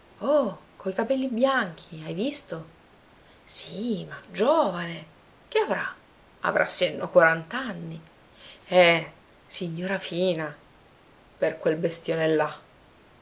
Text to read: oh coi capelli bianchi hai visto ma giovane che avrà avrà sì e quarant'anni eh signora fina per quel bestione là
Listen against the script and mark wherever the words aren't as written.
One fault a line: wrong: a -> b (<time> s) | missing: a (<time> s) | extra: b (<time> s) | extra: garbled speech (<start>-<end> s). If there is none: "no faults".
extra: sì (3.4 s)
extra: no (7.0 s)